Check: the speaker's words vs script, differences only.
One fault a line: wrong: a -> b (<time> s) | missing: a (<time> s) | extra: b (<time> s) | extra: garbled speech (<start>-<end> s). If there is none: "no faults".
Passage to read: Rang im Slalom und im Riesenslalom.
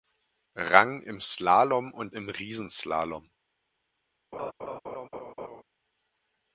no faults